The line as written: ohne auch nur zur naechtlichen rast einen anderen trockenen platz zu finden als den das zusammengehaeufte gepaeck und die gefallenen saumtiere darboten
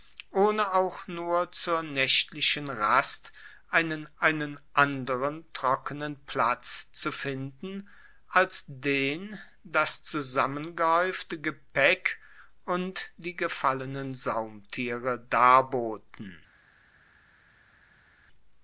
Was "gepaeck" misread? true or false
false